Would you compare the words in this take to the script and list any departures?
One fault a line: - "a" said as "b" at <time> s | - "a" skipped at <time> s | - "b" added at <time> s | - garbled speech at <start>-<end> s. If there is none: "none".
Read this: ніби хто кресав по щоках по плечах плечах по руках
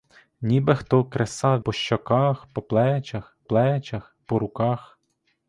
none